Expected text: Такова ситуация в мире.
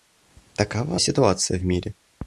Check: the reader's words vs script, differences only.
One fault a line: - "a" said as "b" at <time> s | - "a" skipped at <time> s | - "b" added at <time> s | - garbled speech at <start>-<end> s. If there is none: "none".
none